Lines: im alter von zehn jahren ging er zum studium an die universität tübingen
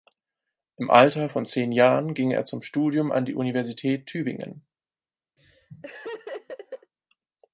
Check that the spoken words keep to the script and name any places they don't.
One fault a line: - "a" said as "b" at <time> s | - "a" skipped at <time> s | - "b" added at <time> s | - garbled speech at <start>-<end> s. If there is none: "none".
none